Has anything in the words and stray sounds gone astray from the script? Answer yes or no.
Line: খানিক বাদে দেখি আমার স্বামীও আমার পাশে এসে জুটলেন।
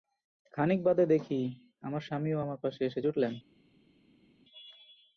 no